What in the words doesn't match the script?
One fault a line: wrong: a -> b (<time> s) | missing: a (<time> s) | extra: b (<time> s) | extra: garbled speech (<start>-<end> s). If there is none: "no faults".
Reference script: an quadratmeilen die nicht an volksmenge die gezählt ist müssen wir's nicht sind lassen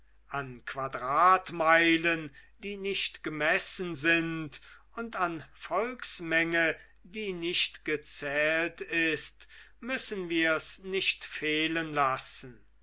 extra: gemessen sind und (3.2 s)
extra: nicht (7.3 s)
wrong: sind -> fehlen (11.2 s)